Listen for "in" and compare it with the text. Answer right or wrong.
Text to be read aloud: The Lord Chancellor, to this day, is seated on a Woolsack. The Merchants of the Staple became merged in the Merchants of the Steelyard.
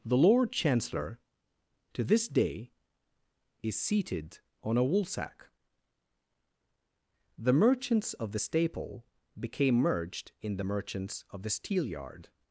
right